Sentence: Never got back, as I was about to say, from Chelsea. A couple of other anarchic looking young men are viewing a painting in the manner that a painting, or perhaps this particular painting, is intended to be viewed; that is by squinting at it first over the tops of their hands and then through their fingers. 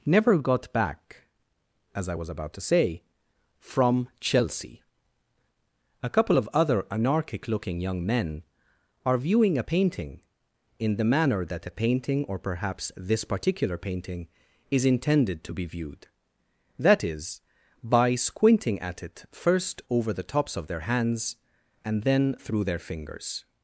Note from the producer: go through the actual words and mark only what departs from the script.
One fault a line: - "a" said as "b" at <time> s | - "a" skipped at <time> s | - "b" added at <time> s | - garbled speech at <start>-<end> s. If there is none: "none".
none